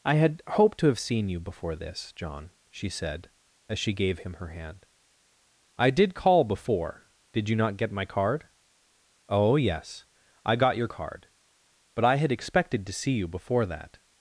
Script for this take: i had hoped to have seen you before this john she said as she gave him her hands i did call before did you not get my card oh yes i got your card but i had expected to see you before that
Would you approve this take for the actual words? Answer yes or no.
no